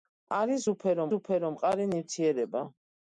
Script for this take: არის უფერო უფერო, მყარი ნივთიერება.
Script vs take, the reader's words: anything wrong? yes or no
no